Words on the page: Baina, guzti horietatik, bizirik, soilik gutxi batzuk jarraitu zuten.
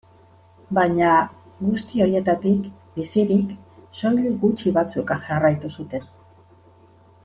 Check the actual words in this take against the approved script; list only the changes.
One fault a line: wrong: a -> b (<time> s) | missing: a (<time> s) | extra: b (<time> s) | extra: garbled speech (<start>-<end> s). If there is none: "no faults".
no faults